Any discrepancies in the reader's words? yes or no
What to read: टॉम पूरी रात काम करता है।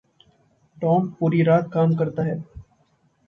no